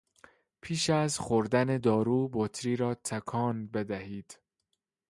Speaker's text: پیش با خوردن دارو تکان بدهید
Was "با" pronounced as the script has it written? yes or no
no